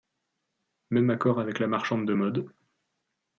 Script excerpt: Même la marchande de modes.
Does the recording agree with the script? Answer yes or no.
no